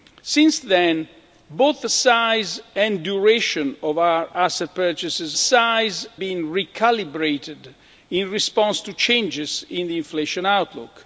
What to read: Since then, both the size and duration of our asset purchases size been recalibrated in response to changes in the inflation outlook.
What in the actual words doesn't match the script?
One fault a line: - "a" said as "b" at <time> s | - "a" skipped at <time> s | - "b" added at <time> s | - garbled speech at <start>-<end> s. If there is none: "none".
none